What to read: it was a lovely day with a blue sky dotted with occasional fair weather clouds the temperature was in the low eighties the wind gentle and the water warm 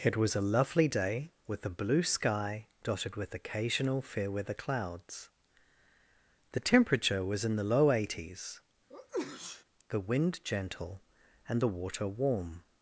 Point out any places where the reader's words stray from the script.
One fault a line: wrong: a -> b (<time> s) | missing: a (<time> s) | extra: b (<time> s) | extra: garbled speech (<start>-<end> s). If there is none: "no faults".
no faults